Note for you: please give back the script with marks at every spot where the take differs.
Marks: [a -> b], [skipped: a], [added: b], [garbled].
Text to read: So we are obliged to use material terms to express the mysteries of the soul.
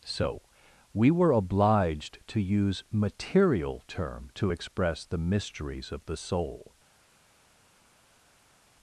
So we [are -> were] obliged to use material [terms -> term] to express the mysteries of the soul.